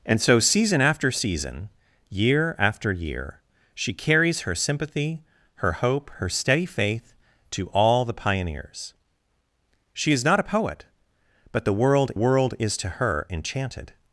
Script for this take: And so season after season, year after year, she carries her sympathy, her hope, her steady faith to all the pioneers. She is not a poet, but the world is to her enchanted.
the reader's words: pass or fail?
fail